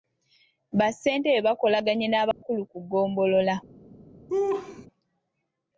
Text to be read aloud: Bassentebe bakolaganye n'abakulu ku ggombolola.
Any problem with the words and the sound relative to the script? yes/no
yes